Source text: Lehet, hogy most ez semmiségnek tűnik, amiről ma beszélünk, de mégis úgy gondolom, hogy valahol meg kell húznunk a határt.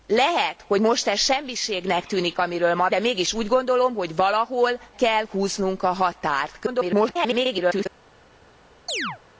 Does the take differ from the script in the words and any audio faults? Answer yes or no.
yes